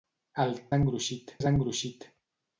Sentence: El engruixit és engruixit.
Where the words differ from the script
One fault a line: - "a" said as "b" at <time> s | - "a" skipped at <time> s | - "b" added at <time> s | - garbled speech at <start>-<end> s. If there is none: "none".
none